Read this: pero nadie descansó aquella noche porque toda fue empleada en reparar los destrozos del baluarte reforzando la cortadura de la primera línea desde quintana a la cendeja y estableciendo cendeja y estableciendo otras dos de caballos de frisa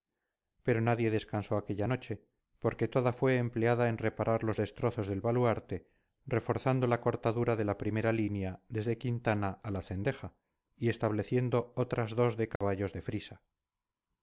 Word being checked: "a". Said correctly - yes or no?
yes